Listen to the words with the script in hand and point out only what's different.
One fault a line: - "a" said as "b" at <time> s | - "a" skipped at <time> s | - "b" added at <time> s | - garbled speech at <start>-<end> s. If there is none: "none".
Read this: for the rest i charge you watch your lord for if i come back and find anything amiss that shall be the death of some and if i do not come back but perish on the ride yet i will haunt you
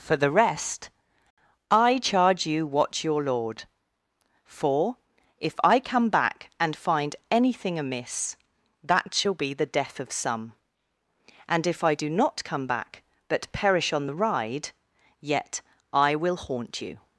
none